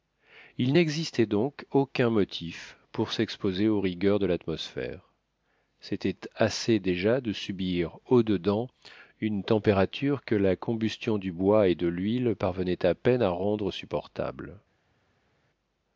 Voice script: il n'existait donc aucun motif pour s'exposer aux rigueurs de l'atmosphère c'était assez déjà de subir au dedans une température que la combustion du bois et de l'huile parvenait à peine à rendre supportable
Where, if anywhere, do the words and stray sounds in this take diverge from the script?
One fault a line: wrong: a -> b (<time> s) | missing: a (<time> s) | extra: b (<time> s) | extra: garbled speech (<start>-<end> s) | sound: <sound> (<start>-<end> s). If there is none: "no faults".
no faults